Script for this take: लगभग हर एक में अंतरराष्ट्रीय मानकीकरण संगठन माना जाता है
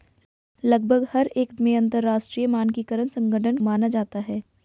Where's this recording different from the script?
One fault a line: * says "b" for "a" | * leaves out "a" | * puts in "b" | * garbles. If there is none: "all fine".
all fine